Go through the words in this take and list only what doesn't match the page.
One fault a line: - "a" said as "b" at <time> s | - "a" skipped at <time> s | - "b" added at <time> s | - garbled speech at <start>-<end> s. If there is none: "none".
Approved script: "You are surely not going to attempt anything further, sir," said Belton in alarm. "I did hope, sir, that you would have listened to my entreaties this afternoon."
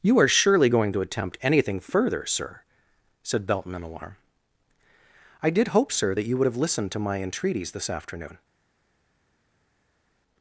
- "not" skipped at 0.7 s